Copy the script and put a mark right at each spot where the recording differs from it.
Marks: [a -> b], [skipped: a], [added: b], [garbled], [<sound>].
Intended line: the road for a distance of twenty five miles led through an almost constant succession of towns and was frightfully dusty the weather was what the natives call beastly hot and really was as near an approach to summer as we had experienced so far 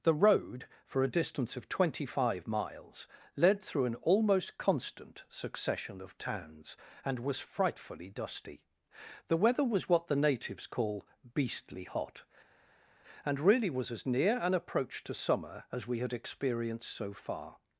the road for a distance of twenty five miles led through an almost constant succession of towns and was frightfully dusty the weather was what the natives call beastly hot and really was as near an approach to summer as we had experienced so far